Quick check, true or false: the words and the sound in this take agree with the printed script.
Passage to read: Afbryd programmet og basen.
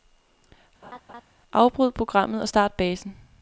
false